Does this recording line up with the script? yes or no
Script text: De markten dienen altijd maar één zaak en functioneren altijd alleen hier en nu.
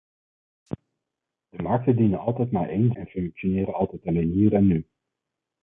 no